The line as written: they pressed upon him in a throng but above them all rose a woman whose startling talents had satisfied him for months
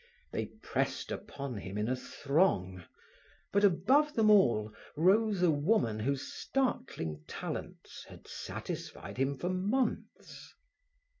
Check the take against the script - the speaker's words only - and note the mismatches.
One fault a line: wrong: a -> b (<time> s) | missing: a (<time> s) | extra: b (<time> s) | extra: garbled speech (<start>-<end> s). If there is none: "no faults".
no faults